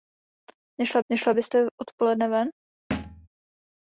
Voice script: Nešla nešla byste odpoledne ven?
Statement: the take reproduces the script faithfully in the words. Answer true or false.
true